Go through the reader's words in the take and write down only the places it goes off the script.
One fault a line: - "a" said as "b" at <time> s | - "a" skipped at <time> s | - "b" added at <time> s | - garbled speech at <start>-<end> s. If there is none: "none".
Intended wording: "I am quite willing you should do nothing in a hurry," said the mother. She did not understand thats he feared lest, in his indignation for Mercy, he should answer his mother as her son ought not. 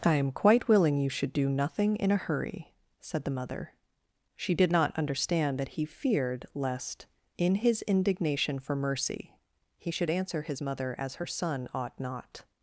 - "thats" said as "that" at 5.6 s